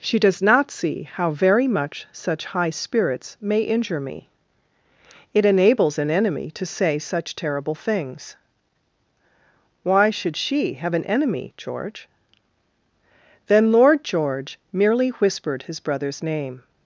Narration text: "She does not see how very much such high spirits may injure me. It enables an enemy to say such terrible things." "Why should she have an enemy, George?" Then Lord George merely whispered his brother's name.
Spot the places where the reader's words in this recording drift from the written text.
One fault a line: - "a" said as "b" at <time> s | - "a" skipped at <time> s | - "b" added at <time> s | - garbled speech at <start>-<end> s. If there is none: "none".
none